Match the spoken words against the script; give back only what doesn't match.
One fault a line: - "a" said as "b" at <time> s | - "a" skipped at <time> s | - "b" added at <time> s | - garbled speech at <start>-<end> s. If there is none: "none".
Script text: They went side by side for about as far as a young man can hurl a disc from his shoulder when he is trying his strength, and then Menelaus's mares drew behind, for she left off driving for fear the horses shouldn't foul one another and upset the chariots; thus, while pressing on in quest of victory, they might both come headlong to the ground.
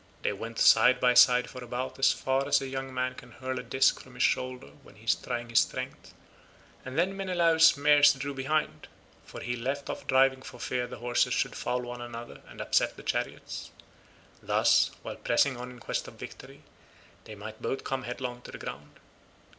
- "she" said as "he" at 9.4 s
- "shouldn't" said as "should" at 11.3 s